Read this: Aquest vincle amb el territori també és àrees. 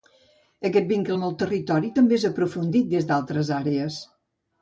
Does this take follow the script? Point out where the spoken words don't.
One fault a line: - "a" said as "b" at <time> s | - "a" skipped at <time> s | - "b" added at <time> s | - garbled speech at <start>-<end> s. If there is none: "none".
- "aprofundit des d'altres" added at 2.3 s